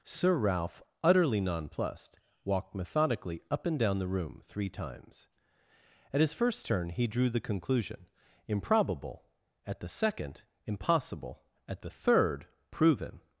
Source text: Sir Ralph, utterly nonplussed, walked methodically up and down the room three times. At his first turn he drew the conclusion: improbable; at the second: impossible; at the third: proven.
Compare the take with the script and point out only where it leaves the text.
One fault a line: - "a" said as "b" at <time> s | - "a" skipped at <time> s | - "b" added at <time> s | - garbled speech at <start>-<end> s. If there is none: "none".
none